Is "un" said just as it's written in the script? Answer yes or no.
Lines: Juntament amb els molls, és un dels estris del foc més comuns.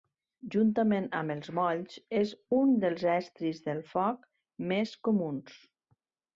yes